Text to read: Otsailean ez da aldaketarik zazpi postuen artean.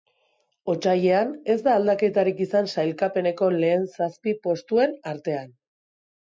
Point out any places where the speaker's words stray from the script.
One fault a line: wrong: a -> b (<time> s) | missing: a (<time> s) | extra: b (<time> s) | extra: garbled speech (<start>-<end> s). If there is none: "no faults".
extra: izan sailkapeneko lehen (2.5 s)